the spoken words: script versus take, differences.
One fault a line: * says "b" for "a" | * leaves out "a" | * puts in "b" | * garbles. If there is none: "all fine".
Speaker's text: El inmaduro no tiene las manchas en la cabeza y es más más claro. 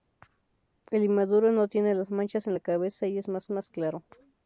all fine